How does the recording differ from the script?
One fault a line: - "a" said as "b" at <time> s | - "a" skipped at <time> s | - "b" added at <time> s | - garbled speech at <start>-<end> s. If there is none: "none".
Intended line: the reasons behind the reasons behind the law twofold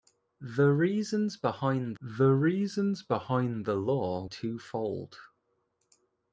none